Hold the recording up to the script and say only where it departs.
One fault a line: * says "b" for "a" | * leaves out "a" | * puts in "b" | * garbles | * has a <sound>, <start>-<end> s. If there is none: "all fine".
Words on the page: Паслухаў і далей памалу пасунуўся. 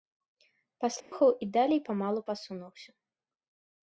* has a dropout, 1.0-1.1 s